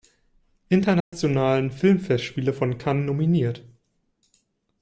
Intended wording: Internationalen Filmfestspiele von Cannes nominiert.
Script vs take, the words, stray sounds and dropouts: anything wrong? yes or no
yes